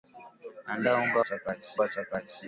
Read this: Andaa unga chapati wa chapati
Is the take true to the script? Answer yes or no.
yes